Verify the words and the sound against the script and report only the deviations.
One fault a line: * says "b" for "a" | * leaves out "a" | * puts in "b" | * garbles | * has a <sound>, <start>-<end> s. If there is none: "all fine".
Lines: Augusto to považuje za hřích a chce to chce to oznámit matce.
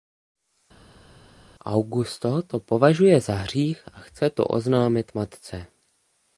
* leaves out "chce to"